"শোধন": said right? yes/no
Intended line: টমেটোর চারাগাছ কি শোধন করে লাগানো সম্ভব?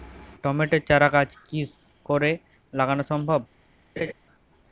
no